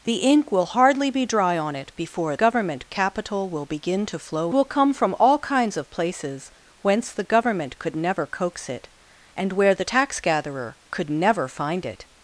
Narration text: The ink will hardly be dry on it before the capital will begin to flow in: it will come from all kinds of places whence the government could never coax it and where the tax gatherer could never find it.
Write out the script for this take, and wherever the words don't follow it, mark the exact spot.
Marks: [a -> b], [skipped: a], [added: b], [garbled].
The ink will hardly be dry on it before [the -> government] capital will begin to flow [skipped: in: it] will come from all kinds of places whence the government could never coax it and where the tax gatherer could never find it.